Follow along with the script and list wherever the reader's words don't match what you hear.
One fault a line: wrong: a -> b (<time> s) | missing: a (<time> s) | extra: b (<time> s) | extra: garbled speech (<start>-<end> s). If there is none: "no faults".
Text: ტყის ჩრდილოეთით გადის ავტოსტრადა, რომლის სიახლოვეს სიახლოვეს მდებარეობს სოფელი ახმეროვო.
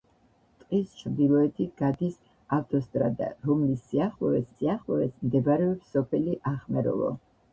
no faults